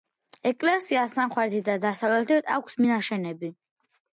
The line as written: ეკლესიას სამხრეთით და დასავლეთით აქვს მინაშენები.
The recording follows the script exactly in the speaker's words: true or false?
true